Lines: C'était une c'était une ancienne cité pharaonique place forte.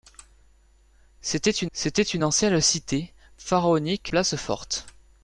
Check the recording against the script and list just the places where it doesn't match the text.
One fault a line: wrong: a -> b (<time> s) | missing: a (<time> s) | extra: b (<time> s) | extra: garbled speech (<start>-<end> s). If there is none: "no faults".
no faults